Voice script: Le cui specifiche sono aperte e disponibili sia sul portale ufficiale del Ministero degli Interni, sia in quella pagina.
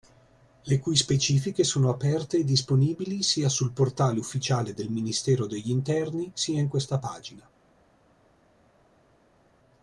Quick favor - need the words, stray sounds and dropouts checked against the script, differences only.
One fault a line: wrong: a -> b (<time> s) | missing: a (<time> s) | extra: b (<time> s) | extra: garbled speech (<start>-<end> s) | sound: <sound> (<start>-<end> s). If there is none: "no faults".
wrong: quella -> questa (6.7 s)